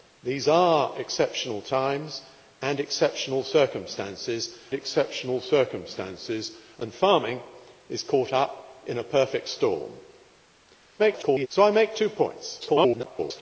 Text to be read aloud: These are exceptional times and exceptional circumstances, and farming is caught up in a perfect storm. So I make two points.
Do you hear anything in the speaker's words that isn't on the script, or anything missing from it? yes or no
yes